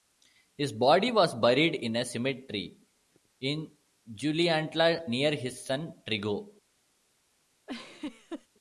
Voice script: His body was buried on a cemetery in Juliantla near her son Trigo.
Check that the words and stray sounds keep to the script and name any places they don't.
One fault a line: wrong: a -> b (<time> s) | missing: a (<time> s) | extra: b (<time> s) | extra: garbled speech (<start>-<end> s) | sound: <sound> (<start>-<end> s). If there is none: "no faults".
wrong: on -> in (1.8 s)
wrong: her -> his (5.4 s)
sound: laugh (7.7-8.5 s)